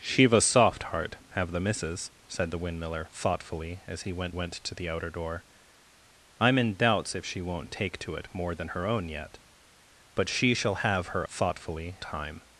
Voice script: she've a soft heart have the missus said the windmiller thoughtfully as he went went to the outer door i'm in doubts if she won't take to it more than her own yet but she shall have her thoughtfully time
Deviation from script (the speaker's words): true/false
false